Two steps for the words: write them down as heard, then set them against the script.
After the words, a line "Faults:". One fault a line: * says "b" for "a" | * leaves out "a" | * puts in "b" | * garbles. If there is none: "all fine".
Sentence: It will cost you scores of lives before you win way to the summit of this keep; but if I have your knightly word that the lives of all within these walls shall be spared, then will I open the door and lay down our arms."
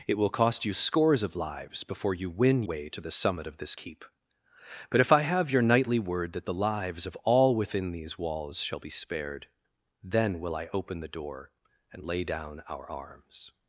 It will cost you scores of lives before you win way to the summit of this keep; but if I have your knightly word that the lives of all within these walls shall be spared, then will I open the door and lay down our arms."
Faults:
all fine